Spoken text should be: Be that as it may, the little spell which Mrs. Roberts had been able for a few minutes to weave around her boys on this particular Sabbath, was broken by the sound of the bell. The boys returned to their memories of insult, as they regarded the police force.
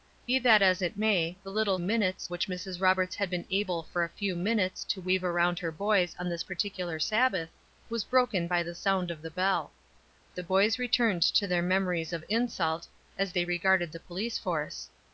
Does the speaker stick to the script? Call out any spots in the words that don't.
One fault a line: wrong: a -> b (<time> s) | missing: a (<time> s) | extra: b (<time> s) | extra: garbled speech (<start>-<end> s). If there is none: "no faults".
wrong: spell -> minutes (1.8 s)